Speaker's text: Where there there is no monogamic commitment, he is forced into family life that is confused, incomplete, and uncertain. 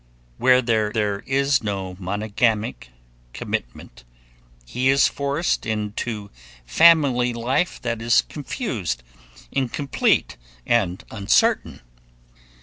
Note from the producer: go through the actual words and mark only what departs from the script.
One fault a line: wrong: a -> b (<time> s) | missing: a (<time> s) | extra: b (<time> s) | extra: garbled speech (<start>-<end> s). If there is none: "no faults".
no faults